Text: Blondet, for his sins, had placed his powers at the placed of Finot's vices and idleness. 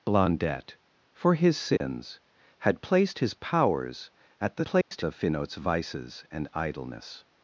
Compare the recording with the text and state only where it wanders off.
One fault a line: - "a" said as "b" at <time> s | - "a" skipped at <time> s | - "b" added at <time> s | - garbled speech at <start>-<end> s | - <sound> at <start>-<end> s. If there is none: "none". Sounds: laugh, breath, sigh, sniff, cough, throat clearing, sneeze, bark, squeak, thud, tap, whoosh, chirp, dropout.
- dropout at 1.8-1.8 s
- dropout at 4.8-4.9 s